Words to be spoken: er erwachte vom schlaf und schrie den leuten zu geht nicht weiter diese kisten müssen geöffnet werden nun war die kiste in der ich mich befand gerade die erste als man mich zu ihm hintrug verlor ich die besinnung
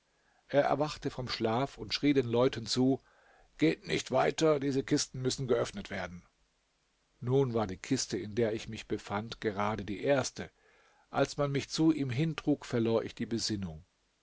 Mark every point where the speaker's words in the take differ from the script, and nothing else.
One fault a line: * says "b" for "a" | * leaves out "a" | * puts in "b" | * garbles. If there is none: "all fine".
all fine